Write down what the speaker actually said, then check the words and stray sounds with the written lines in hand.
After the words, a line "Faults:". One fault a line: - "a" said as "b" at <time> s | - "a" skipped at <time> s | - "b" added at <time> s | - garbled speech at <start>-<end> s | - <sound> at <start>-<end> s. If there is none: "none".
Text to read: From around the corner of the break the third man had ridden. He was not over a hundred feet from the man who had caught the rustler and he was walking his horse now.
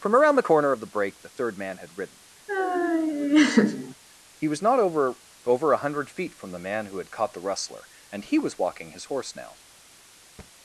From around the corner of the break the third man had ridden. He was not over over a hundred feet from the man who had caught the rustler and he was walking his horse now.
Faults:
- laugh at 2.5-3.9 s
- "over" added at 5.4 s
- thud at 10.4-10.5 s